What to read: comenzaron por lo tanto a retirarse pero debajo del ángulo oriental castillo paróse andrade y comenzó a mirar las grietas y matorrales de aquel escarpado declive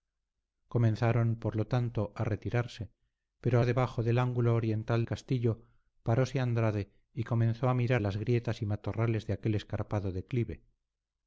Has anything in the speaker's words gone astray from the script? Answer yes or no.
no